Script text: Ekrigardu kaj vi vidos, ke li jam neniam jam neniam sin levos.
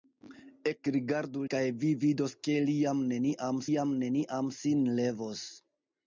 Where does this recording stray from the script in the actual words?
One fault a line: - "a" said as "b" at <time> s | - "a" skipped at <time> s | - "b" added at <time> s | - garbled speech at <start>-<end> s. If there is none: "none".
none